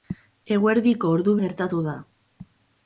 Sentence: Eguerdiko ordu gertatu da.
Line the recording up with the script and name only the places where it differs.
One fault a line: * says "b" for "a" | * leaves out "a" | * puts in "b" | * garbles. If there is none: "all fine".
all fine